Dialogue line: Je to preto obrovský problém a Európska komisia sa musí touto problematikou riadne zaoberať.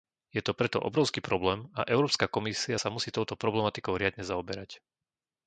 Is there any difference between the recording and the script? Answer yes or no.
no